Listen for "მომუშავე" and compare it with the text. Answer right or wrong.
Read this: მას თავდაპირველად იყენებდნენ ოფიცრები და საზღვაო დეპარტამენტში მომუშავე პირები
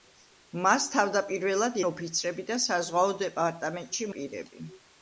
wrong